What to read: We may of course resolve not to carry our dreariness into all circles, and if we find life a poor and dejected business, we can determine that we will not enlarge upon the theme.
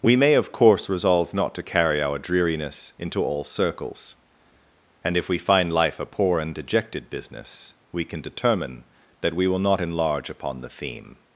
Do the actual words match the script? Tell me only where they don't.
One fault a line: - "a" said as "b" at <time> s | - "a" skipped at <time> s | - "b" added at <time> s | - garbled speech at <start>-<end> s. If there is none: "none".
none